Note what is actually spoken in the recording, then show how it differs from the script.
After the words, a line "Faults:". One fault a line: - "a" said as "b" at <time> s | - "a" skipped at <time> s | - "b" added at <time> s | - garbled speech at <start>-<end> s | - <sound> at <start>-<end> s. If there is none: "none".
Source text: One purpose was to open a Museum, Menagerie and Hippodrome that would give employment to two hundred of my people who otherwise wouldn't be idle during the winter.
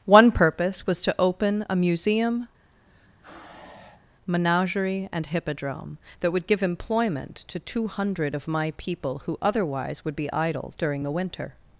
One purpose was to open a Museum, Menagerie and Hippodrome that would give employment to two hundred of my people who otherwise would be idle during the winter.
Faults:
- sigh at 2.7-4.1 s
- "wouldn't" said as "would" at 10.0 s